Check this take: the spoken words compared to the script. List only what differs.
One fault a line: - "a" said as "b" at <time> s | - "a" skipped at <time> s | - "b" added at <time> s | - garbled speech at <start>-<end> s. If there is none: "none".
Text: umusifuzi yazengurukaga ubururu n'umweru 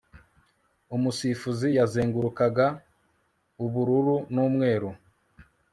none